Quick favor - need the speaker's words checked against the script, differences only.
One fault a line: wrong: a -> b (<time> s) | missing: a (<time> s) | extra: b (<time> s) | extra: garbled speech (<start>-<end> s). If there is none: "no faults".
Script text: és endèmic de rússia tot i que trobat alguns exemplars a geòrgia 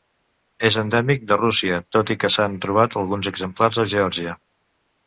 extra: s'han (2.4 s)